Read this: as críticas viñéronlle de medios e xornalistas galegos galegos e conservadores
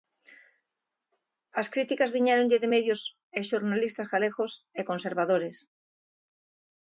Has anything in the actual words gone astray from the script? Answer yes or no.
yes